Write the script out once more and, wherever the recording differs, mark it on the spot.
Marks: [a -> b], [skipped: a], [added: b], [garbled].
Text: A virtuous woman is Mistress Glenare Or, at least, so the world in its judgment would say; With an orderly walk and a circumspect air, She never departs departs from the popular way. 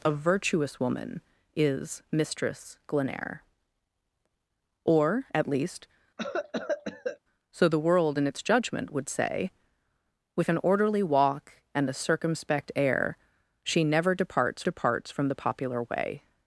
A virtuous woman is Mistress Glenare Or, at least, so the world in its judgment would say; With an orderly walk and a circumspect air, She never departs departs from the popular way.